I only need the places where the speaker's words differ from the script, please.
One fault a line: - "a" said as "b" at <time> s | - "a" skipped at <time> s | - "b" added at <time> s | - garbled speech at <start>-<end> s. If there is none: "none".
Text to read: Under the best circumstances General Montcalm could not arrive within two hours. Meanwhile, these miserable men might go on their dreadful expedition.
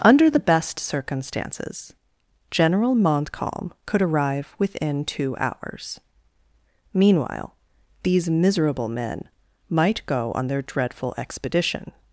- "not" skipped at 4.0 s